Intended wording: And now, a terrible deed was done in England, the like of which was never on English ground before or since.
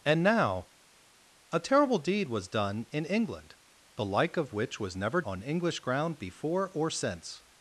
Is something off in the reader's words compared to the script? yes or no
no